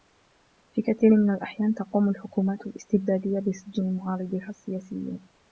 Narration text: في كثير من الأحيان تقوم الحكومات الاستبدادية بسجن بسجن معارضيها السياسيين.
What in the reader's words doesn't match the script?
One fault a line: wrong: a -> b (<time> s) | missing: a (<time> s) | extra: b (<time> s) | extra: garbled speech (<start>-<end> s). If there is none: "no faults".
missing: بسجن (4.0 s)